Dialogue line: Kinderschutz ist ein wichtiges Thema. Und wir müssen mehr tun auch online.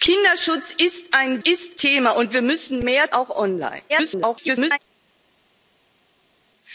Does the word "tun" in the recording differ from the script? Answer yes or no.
yes